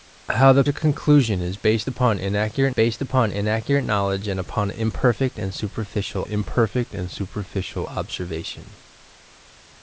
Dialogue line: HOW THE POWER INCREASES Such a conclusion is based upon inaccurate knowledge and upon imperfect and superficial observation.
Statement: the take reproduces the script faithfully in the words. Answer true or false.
false